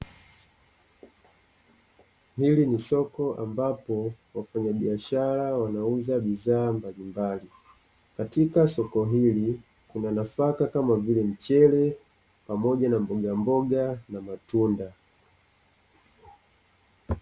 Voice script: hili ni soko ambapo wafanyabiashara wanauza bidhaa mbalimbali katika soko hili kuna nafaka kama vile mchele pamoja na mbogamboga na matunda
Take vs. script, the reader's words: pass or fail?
pass